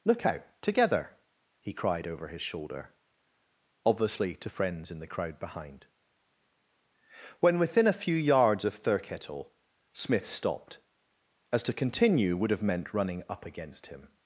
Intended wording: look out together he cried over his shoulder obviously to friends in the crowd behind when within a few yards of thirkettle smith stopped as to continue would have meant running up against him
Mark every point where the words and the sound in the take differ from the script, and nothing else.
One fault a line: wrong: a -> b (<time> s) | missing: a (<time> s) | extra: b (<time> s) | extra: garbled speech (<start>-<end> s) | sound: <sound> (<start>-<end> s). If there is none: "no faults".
no faults